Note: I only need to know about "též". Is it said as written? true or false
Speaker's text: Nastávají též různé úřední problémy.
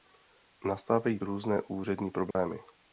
false